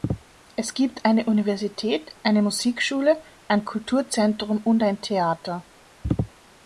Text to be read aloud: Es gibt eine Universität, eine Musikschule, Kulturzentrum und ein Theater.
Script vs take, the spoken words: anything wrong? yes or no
yes